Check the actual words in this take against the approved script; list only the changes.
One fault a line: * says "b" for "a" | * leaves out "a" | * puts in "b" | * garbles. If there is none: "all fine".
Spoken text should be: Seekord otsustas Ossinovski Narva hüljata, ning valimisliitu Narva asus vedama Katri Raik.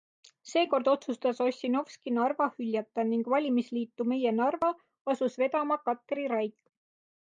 * puts in "Meie"